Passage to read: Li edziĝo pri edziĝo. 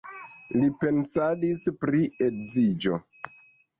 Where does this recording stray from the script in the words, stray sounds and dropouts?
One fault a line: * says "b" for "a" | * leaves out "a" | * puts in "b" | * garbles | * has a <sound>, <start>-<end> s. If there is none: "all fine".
* says "pensadis" for "edziĝo"